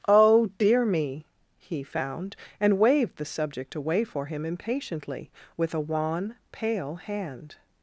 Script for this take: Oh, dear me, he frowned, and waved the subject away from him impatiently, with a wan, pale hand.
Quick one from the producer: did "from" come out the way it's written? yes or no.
no